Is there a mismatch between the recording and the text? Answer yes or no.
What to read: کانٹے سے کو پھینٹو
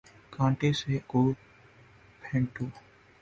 no